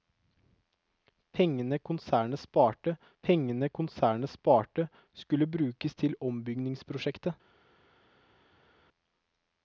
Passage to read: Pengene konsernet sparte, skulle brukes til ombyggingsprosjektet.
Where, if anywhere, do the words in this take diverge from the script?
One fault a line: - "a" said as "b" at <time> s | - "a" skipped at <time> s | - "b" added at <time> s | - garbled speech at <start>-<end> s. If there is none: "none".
- "pengene konsernet sparte" added at 3.2 s